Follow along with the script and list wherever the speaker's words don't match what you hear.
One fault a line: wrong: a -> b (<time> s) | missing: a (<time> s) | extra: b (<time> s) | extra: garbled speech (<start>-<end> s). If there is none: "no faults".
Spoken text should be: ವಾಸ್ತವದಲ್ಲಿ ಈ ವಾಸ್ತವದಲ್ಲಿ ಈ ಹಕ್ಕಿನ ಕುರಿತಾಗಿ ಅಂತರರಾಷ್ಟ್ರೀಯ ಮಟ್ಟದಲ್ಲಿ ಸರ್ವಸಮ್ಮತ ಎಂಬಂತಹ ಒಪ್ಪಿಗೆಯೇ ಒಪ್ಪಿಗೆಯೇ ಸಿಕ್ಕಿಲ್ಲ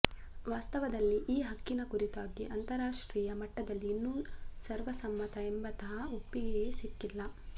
missing: ವಾಸ್ತವದಲ್ಲಿ ಈ (1.4 s)
extra: ಇನ್ನೂ (3.9 s)
missing: ಒಪ್ಪಿಗೆಯೇ (6.7 s)